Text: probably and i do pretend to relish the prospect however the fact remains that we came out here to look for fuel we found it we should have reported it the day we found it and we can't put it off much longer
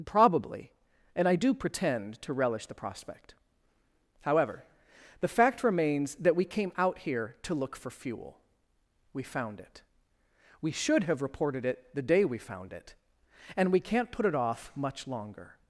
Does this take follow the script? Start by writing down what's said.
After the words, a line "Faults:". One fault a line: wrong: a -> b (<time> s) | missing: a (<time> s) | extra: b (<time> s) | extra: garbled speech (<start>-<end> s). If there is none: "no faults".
probably and i do pretend to relish the prospect however the fact remains that we came out here to look for fuel we found it we should have reported it the day we found it and we can't put it off much longer
Faults:
no faults